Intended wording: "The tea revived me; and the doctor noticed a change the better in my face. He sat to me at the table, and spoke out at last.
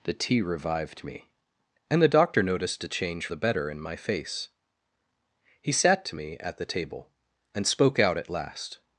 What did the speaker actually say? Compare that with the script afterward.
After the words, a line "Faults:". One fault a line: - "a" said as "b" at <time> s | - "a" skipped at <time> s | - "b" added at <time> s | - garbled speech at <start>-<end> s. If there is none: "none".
"The tea revived me; and the doctor noticed a change the better in my face. He sat to me at the table, and spoke out at last.
Faults:
none